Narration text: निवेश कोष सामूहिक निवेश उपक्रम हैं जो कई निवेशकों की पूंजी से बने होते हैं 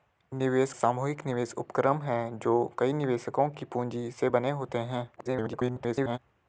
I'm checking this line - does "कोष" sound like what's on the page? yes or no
no